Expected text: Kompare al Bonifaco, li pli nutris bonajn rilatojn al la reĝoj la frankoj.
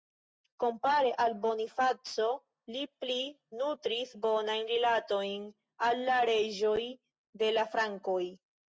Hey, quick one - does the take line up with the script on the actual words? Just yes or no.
no